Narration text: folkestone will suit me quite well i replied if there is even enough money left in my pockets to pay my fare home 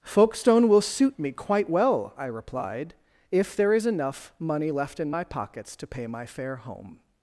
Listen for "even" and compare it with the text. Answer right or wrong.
wrong